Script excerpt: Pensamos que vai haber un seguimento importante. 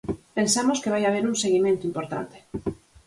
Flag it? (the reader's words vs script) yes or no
no